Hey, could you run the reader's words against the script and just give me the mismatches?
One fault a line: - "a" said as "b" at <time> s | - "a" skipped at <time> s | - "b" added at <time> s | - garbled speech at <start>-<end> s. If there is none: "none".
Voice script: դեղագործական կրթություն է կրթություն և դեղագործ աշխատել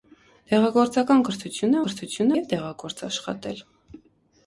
none